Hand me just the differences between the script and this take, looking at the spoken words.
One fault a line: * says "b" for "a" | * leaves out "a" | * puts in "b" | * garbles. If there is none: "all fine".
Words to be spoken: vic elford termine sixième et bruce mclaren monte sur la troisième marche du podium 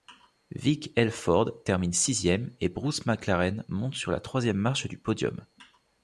all fine